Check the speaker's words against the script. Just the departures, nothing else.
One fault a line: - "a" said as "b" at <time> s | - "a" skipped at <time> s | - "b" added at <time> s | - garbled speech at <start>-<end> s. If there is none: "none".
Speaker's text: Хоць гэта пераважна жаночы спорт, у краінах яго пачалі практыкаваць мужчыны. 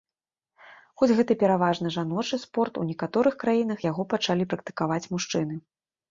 - "некаторых" added at 2.9 s